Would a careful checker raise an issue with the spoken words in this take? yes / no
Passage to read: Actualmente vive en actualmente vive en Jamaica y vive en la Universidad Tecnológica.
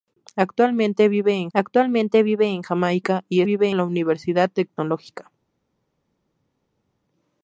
no